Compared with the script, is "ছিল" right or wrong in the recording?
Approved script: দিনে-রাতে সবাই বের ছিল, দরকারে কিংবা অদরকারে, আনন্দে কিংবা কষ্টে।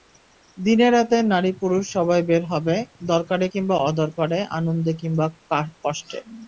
wrong